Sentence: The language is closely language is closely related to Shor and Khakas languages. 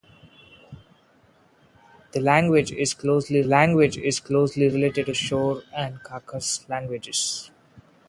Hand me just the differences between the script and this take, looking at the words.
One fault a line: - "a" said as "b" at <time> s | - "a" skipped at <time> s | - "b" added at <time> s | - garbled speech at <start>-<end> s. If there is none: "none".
none